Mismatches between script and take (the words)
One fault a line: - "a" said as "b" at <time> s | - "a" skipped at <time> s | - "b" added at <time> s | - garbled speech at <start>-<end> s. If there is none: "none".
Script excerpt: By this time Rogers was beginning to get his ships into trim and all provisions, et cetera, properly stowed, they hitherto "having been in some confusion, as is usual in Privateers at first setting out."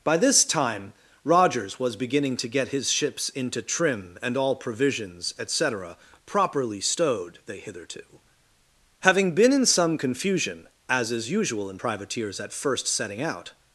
none